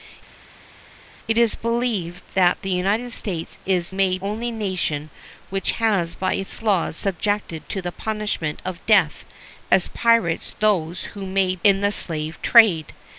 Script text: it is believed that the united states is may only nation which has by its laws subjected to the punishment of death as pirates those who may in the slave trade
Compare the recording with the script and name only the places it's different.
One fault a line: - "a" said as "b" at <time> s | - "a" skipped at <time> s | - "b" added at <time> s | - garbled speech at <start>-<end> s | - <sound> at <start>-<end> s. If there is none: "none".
none